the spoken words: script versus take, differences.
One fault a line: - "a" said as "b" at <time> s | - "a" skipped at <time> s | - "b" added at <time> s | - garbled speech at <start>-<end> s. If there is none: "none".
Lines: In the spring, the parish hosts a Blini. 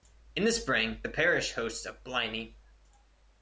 none